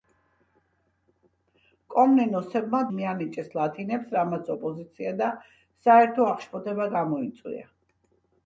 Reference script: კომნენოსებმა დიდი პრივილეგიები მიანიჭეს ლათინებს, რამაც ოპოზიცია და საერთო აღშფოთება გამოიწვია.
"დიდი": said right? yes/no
no